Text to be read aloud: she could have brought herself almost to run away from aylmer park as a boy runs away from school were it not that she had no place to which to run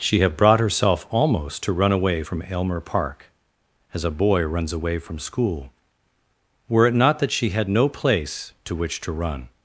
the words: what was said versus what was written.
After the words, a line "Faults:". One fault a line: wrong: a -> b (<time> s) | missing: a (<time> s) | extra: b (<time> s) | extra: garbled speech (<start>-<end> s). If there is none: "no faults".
she have brought herself almost to run away from aylmer park as a boy runs away from school were it not that she had no place to which to run
Faults:
missing: could (0.2 s)